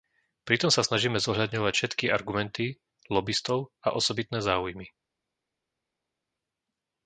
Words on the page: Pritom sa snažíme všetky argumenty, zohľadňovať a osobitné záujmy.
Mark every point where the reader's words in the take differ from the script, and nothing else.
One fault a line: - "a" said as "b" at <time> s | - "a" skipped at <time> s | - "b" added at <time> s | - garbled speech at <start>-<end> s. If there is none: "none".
- "zohľadňovať" added at 1.2 s
- "zohľadňovať" said as "lobistov" at 3.1 s